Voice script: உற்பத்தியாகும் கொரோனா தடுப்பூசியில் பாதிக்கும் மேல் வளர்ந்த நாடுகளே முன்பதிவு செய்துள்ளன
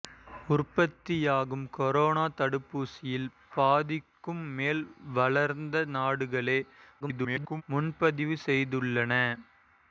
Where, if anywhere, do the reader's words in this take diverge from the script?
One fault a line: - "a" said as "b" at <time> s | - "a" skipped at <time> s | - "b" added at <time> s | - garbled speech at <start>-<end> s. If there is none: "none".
- garbled speech at 7.0-7.6 s